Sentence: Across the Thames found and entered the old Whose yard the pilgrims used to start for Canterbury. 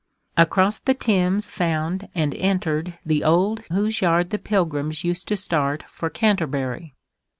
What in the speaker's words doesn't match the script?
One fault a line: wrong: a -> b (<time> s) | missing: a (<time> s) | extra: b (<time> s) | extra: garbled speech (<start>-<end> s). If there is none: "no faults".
no faults